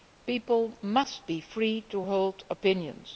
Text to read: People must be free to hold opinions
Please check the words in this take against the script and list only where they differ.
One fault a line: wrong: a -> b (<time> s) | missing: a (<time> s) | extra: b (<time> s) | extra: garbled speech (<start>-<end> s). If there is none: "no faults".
no faults